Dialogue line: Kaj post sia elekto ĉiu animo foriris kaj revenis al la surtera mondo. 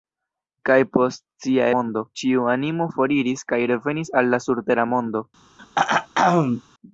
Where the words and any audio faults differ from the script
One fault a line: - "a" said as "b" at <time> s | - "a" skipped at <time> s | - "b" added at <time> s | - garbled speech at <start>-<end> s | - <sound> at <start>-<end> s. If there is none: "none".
- "elekto" said as "mondo" at 1.8 s
- throat clearing at 5.6-6.6 s